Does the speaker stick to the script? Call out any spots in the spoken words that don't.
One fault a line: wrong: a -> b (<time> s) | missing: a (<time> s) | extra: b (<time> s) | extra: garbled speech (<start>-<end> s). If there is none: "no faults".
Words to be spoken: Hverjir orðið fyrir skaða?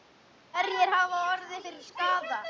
extra: hafa (0.9 s)